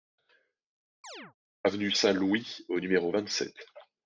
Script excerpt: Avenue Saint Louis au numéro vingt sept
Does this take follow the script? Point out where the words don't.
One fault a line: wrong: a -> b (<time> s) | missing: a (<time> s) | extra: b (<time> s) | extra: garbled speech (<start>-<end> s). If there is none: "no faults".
no faults